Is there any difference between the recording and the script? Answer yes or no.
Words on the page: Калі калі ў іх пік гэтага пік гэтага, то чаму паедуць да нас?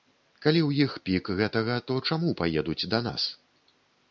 yes